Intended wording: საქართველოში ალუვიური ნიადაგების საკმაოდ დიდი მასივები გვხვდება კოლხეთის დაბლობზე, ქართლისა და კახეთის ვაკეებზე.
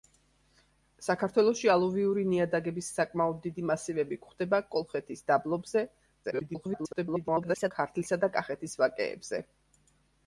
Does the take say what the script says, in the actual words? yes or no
no